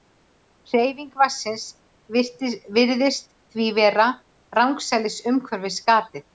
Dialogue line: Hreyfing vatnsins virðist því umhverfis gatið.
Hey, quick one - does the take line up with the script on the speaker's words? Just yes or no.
no